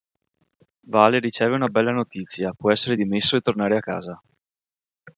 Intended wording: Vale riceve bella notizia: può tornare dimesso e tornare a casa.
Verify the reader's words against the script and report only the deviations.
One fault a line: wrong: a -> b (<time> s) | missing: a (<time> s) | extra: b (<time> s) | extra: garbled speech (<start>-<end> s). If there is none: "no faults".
extra: una (1.5 s)
wrong: tornare -> essere (2.7 s)